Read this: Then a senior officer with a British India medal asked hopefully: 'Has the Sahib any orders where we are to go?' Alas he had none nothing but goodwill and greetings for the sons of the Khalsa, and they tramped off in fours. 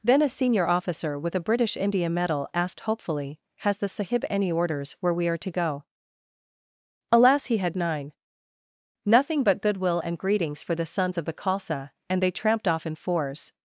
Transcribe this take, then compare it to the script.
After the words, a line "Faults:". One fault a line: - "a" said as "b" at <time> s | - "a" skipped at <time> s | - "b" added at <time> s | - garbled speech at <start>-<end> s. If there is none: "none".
Then a senior officer with a British India medal asked hopefully: 'Has the Sahib any orders where we are to go?' Alas he had nine nothing but goodwill and greetings for the sons of the Khalsa, and they tramped off in fours.
Faults:
- "none" said as "nine" at 7.8 s